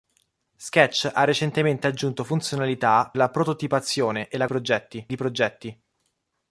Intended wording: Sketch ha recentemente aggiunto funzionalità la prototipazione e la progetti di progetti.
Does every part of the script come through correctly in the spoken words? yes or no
yes